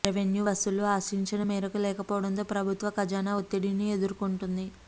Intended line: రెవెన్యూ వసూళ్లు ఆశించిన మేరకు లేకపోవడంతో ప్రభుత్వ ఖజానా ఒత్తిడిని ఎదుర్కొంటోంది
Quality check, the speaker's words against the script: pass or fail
pass